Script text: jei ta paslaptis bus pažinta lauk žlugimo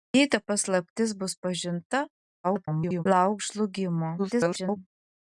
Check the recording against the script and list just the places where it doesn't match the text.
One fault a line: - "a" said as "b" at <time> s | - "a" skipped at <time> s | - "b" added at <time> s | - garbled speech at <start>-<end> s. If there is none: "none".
- garbled speech at 2.4-3.0 s
- garbled speech at 4.2-4.8 s